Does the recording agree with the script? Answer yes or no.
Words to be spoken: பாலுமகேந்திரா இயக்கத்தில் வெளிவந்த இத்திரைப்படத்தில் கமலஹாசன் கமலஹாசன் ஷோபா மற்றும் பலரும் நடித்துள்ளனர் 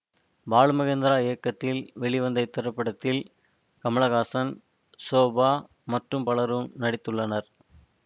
no